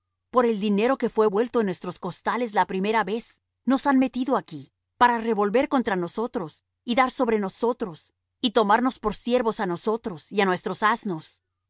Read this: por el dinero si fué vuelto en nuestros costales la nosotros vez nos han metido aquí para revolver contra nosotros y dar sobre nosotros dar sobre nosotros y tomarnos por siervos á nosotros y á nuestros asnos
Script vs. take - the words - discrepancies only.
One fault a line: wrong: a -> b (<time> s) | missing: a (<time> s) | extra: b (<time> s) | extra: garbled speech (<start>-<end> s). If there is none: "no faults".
wrong: si -> que (1.0 s)
wrong: nosotros -> primera (2.7 s)
missing: dar sobre nosotros (8.1 s)